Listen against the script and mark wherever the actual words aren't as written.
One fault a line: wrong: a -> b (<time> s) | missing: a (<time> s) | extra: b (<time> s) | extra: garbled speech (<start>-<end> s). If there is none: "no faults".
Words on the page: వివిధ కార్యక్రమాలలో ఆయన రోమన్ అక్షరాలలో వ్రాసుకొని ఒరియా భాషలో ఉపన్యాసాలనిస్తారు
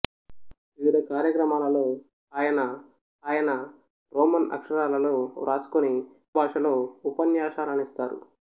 extra: ఆయన (3.2 s)
missing: ఒరియా (5.9 s)